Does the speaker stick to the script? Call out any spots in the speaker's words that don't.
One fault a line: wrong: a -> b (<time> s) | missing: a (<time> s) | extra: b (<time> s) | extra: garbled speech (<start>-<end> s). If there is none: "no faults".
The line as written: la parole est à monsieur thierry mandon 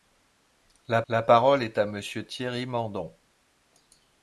extra: la (1.1 s)